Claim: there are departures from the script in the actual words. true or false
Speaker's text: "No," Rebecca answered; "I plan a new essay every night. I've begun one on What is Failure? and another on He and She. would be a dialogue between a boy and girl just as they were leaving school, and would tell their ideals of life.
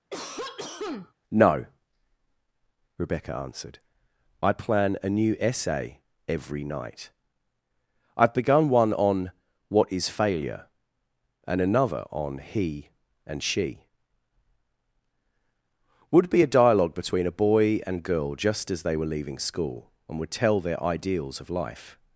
false